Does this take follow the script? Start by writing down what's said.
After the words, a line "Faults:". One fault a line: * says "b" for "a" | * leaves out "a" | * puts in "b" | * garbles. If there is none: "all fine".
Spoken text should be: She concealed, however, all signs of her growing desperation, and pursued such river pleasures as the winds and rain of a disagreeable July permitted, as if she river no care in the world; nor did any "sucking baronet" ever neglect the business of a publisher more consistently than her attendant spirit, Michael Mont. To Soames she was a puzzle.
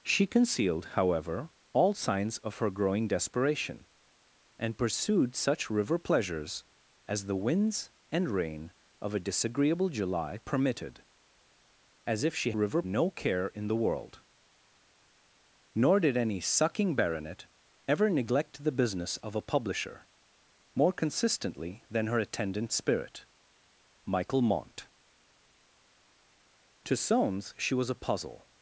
She concealed, however, all signs of her growing desperation, and pursued such river pleasures as the winds and rain of a disagreeable July permitted, as if she river no care in the world; nor did any "sucking baronet" ever neglect the business of a publisher more consistently than her attendant spirit, Michael Mont. To Soames she was a puzzle.
Faults:
all fine